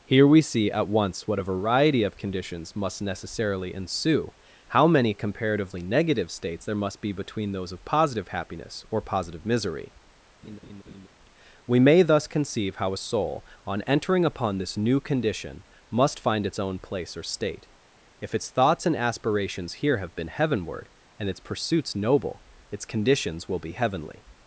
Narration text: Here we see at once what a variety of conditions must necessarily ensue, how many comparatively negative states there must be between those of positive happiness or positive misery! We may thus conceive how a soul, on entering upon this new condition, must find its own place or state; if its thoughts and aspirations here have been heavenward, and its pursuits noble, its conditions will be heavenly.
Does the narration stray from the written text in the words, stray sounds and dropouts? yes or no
yes